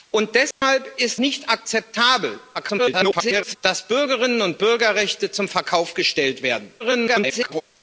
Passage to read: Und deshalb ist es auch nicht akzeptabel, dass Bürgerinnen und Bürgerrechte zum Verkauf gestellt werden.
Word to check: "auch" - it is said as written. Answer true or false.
false